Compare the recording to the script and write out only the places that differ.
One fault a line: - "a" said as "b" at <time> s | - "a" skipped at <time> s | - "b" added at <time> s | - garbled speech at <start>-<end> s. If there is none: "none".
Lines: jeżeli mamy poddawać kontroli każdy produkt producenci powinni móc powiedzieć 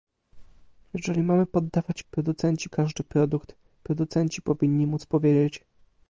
- "kontroli" said as "producenci" at 2.1 s